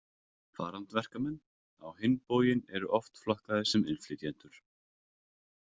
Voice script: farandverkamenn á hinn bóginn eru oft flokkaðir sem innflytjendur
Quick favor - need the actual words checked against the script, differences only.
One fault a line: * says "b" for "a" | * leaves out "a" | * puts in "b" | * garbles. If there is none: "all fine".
all fine